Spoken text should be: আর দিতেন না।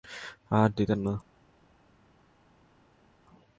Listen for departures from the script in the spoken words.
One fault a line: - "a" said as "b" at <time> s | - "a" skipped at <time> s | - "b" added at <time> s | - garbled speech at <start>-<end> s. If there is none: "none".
none